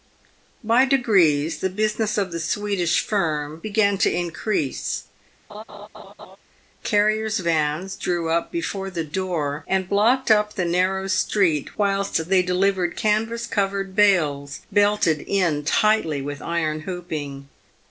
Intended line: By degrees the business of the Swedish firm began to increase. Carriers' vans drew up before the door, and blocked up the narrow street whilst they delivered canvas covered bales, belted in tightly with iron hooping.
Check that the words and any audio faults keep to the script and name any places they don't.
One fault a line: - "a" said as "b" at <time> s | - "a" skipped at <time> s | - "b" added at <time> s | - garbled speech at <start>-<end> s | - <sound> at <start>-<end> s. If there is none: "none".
- laugh at 5.5-6.4 s